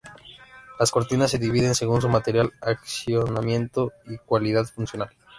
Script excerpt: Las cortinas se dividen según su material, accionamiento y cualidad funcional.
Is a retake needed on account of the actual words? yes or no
no